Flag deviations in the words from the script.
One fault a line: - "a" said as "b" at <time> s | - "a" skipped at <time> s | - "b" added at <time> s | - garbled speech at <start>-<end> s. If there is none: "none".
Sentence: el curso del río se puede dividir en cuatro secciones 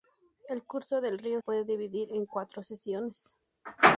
- "se" skipped at 1.4 s